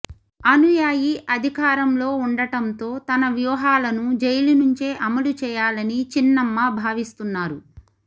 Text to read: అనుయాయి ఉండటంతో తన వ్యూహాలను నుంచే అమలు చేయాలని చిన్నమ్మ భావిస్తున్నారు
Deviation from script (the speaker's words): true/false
true